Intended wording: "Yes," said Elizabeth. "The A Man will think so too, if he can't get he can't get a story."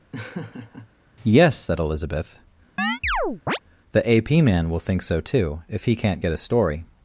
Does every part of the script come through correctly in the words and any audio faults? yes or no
no